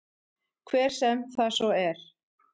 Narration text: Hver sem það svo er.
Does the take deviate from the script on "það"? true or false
false